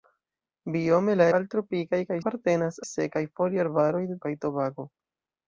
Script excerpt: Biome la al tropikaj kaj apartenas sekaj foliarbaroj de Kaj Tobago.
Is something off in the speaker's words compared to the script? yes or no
no